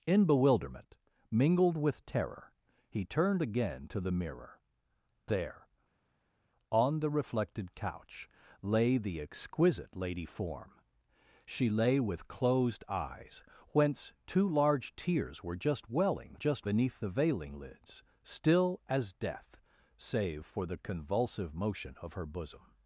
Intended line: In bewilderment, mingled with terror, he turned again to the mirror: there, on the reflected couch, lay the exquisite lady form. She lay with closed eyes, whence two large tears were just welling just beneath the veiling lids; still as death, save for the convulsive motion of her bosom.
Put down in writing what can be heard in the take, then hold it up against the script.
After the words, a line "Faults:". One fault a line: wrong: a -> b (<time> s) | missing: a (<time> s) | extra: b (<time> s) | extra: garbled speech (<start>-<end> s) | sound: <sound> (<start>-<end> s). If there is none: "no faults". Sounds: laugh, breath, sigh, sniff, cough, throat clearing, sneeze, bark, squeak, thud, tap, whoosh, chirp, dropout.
In bewilderment, mingled with terror, he turned again to the mirror: there, on the reflected couch, lay the exquisite lady form. She lay with closed eyes, whence two large tears were just welling just beneath the veiling lids; still as death, save for the convulsive motion of her bosom.
Faults:
no faults